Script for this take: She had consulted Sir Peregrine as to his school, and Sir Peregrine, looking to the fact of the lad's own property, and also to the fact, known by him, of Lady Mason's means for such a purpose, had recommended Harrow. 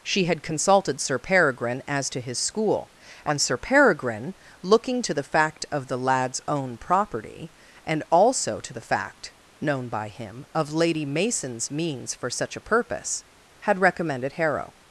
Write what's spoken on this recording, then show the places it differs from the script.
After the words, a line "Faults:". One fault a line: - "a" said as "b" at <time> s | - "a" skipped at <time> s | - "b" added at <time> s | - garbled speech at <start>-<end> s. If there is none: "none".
She had consulted Sir Peregrine as to his school, and Sir Peregrine, looking to the fact of the lad's own property, and also to the fact, known by him, of Lady Mason's means for such a purpose, had recommended Harrow.
Faults:
none